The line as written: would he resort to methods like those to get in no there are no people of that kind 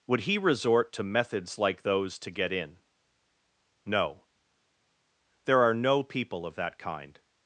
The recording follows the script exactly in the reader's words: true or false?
true